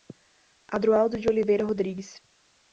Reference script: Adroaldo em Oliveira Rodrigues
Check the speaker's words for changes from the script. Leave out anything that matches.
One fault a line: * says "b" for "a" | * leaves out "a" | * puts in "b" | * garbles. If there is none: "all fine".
* says "de" for "em"